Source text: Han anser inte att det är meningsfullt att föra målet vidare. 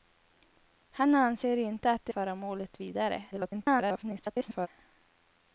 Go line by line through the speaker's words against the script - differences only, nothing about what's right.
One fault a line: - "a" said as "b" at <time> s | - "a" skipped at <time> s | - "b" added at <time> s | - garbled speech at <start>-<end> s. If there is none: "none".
- "är meningsfullt att" skipped at 2.1 s
- garbled speech at 3.3-4.7 s